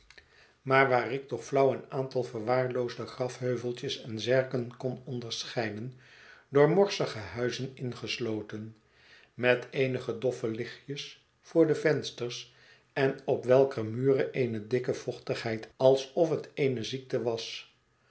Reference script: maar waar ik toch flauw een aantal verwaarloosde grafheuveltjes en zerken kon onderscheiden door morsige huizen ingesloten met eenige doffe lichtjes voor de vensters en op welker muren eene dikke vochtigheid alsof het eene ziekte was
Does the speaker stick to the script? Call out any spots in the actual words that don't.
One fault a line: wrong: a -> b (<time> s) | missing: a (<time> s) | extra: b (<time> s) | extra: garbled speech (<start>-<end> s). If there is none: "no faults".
no faults